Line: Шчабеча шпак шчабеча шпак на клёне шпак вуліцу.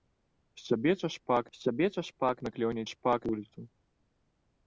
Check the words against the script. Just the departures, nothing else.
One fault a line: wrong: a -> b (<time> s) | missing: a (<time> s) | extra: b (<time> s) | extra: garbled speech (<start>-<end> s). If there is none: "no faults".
no faults